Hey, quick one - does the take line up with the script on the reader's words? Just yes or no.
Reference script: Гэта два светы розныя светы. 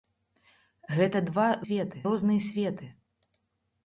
yes